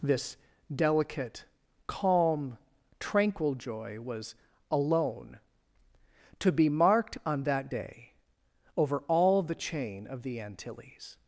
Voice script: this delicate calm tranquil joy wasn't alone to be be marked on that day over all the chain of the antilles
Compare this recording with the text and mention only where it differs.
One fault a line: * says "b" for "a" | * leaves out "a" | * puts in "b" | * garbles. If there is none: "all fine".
* says "was" for "wasn't"
* leaves out "be"